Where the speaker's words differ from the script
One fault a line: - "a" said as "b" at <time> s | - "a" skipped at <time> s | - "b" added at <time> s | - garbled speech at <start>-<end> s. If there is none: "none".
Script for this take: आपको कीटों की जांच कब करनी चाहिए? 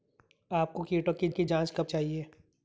- "की" added at 1.3 s
- "करनी" skipped at 1.9 s